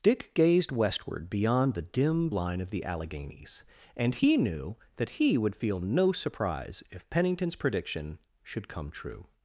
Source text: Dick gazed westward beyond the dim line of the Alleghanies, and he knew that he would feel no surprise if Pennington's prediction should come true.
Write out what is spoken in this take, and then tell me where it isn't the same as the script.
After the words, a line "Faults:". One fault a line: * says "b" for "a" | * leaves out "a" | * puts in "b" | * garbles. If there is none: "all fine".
Dick gazed westward beyond the dim line of the Alleghanies, and he knew that he would feel no surprise if Pennington's prediction should come true.
Faults:
all fine